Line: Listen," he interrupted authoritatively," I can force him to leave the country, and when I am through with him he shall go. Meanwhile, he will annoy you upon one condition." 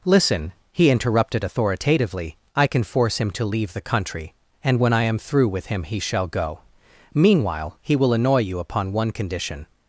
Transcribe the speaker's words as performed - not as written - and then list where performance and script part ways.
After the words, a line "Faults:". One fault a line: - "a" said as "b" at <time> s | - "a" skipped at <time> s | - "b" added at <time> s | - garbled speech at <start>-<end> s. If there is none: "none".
Listen," he interrupted authoritatively," I can force him to leave the country, and when I am through with him he shall go. Meanwhile, he will annoy you upon one condition."
Faults:
none